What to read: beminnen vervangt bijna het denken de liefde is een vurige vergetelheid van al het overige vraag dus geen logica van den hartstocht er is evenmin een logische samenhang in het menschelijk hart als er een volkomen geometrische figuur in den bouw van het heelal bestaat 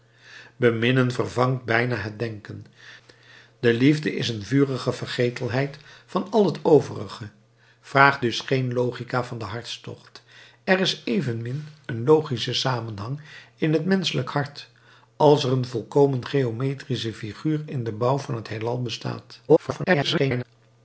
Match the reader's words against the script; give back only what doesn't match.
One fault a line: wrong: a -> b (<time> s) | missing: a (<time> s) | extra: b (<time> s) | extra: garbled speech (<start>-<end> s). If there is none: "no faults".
extra: garbled speech (19.5-20.4 s)